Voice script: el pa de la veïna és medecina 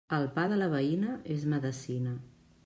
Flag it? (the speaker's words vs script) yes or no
no